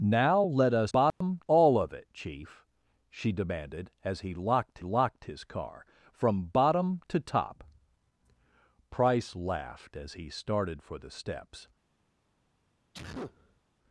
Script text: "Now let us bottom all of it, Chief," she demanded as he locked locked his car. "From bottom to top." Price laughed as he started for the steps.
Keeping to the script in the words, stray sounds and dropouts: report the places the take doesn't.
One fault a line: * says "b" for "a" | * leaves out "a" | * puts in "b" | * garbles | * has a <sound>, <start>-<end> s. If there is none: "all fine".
* has a dropout, 1.1-1.2 s
* has a sneeze, 12.9-13.6 s